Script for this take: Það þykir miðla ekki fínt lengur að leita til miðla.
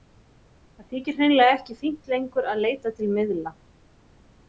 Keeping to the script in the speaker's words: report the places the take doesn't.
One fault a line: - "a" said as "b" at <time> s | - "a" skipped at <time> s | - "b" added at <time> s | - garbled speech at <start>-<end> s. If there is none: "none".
- "miðla" said as "hreinlega" at 1.2 s